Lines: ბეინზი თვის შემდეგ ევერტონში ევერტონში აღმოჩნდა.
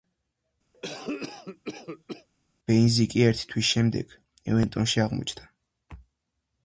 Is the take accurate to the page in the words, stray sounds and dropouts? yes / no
no